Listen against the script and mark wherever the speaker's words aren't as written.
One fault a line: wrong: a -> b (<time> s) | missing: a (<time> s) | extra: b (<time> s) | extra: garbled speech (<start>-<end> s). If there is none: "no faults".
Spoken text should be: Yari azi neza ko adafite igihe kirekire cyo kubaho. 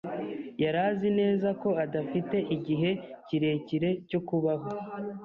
no faults